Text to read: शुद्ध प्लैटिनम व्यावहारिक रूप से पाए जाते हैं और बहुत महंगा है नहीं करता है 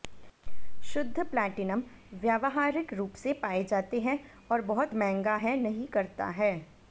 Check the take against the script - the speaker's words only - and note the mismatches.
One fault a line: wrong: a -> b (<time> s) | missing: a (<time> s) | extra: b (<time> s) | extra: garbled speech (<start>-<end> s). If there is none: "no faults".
no faults